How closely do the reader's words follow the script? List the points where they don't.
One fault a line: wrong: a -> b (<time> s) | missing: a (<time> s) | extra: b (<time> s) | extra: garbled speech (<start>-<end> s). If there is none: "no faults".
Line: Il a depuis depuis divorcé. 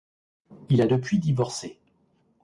missing: depuis (1.2 s)